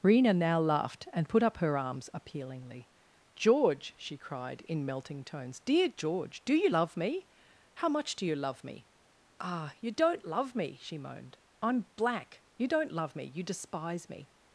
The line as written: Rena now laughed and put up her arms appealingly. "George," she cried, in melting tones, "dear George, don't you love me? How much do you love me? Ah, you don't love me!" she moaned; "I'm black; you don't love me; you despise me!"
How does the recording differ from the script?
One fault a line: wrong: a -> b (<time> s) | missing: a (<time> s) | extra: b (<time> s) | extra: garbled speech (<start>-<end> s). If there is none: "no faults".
wrong: don't -> do (6.4 s)